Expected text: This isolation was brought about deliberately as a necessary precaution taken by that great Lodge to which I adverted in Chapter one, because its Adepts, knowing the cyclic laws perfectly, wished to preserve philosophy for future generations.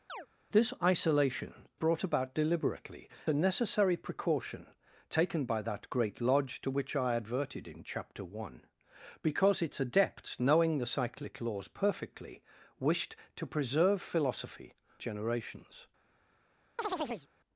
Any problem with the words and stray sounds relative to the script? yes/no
yes